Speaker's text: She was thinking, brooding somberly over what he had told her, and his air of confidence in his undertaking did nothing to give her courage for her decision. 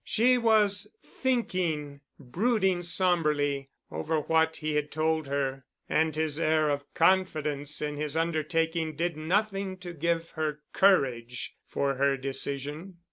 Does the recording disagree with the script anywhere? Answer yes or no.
no